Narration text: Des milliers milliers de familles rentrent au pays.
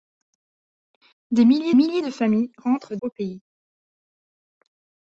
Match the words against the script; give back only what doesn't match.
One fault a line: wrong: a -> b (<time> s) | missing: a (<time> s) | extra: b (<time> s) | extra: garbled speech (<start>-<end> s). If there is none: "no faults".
no faults